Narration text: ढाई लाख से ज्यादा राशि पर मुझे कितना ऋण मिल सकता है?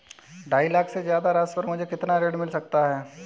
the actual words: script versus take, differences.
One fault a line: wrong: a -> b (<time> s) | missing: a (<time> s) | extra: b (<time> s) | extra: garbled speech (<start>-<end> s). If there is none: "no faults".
no faults